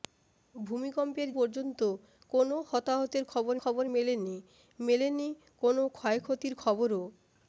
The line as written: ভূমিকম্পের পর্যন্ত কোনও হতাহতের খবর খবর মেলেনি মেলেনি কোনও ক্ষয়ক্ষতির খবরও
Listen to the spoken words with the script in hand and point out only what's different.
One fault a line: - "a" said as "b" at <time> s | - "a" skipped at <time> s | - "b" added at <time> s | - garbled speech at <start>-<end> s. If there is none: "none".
none